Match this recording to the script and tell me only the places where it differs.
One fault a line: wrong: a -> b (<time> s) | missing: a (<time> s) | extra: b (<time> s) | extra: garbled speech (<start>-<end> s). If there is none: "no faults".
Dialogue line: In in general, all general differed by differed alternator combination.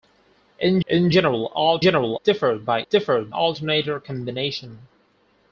no faults